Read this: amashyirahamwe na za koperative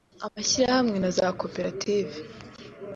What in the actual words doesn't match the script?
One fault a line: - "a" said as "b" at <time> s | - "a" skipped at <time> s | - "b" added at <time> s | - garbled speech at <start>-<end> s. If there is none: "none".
none